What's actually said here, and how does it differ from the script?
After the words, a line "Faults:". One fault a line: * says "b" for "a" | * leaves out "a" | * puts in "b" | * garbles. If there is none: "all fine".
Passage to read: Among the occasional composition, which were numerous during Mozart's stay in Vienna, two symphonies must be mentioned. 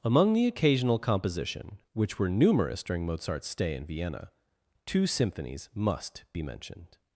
Among the occasional composition, which were numerous during Mozart's stay in Vienna, two symphonies must be mentioned.
Faults:
all fine